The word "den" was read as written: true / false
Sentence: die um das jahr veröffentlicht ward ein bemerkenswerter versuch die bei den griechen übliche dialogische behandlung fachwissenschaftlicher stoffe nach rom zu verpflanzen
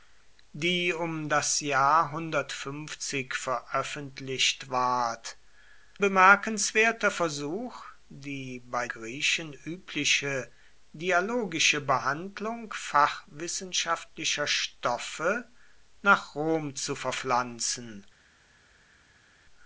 false